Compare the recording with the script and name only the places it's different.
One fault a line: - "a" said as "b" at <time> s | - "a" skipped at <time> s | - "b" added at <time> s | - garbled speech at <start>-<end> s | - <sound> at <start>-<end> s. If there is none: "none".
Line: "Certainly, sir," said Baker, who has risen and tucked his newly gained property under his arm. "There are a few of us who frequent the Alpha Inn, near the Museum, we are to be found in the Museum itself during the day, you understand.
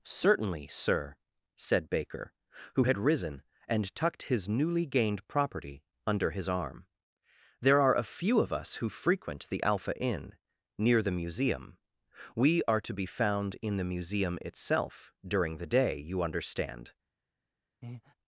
- "has" said as "had" at 2.8 s
- breath at 17.8-18.1 s